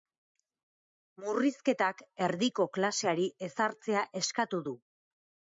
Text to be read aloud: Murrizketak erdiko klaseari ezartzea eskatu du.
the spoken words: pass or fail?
pass